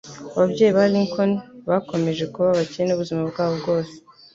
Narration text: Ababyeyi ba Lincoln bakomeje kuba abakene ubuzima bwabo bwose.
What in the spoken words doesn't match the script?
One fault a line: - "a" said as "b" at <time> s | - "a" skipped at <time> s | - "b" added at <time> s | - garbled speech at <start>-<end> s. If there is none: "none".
none